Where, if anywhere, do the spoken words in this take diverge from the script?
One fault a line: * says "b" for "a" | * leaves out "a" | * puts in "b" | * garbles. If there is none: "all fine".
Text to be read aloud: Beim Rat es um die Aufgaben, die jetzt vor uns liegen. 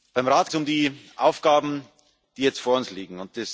all fine